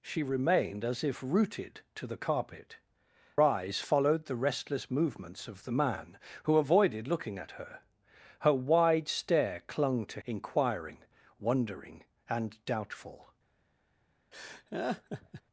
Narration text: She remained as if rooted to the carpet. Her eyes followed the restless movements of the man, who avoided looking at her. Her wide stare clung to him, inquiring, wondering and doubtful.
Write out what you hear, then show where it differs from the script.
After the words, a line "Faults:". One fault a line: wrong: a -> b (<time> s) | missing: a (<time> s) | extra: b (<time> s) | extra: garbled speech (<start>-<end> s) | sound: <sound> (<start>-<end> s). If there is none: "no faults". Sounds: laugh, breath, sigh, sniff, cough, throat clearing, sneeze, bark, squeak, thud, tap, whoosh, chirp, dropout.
She remained as if rooted to the carpet. Eyes followed the restless movements of the man, who avoided looking at her. Her wide stare clung to inquiring, wondering and doubtful.
Faults:
missing: Her (2.8 s)
missing: him (10.2 s)
sound: laugh (14.3-15.4 s)